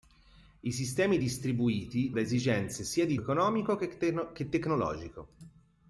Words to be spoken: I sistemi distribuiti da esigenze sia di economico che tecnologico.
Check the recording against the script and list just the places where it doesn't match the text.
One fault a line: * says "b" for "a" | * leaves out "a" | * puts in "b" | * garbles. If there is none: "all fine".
all fine